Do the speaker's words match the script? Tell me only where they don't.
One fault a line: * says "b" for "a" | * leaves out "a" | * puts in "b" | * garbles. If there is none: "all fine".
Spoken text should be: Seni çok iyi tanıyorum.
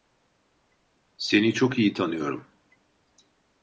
all fine